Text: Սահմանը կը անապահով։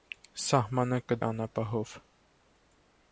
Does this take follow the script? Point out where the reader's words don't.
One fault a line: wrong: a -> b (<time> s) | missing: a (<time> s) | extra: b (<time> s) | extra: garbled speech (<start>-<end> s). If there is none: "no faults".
no faults